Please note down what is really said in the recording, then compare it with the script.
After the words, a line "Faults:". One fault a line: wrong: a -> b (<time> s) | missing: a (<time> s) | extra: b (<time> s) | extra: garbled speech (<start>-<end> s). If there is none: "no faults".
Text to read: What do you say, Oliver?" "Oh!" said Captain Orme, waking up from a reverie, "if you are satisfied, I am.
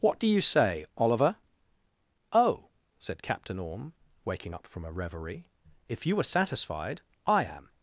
What do you say, Oliver?" "Oh!" said Captain Orme, waking up from a reverie, "if you are satisfied, I am.
Faults:
no faults